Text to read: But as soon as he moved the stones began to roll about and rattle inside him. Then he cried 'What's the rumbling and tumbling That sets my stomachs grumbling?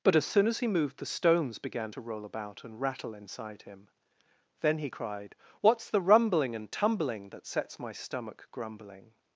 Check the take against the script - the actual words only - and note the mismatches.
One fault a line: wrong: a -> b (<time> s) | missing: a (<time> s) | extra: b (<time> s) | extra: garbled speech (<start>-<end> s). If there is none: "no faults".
wrong: stomachs -> stomach (7.9 s)